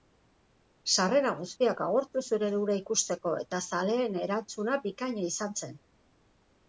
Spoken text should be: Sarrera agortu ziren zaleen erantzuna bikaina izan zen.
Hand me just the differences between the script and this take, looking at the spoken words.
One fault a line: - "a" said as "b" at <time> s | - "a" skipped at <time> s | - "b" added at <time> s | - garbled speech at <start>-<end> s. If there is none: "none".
- "guztiak" added at 1.4 s
- "hura ikusteko eta" added at 2.6 s